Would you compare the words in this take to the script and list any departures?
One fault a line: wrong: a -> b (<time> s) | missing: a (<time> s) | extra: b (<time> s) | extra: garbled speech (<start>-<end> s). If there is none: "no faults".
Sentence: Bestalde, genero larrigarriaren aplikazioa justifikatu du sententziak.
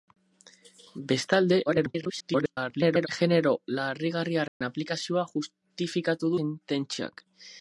extra: garbled speech (1.7-3.1 s)
missing: du (6.3 s)